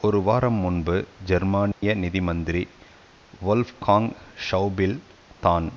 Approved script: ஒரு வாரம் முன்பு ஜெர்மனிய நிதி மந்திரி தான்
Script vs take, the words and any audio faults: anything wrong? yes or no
yes